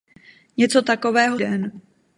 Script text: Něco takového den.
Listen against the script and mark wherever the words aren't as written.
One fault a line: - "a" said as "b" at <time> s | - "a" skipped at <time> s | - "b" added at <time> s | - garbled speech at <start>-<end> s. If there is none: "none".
none